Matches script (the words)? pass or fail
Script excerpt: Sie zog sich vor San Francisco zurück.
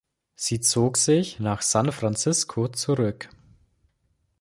fail